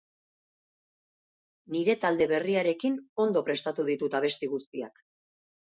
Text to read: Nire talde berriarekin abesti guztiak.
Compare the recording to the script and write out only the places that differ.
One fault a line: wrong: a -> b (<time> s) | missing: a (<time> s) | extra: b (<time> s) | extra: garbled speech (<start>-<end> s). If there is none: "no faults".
extra: ondo prestatu ditut (3.3 s)